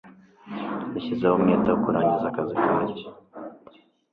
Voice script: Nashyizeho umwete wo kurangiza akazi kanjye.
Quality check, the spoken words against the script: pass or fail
pass